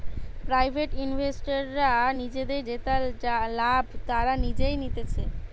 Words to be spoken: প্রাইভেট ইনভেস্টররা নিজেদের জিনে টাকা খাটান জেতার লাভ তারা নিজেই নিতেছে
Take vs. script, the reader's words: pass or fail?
fail